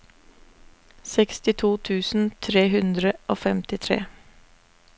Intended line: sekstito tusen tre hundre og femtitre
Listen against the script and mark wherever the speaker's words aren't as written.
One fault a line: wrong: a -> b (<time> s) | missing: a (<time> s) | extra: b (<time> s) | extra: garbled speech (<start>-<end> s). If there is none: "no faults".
no faults